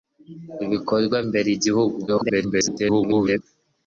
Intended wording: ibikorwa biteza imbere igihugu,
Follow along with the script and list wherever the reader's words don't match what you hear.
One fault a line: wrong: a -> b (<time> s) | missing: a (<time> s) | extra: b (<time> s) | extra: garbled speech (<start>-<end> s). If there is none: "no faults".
missing: biteza (1.2 s)
extra: garbled speech (2.1-3.4 s)